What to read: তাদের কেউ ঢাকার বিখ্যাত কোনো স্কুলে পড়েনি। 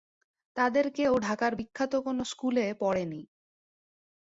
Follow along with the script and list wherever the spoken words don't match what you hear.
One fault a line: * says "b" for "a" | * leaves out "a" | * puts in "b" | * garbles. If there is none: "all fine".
all fine